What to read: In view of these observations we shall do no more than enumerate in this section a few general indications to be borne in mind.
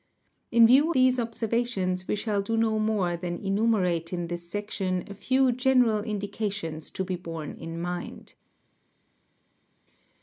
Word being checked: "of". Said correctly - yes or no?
no